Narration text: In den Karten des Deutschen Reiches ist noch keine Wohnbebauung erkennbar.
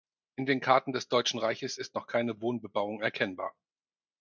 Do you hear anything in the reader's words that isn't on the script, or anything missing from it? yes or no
no